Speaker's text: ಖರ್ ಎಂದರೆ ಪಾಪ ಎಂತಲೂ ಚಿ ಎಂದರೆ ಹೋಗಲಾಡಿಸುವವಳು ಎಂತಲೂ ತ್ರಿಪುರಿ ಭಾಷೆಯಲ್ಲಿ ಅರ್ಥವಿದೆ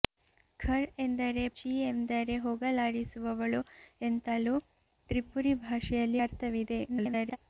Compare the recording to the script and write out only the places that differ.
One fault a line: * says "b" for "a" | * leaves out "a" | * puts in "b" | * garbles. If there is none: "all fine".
* leaves out "ಪಾಪ ಎಂತಲೂ"
* garbles